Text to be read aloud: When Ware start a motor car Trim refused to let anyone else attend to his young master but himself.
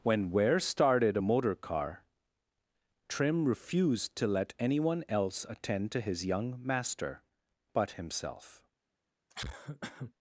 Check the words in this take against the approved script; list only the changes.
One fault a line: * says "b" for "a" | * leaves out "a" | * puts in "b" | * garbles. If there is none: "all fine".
* says "started" for "start"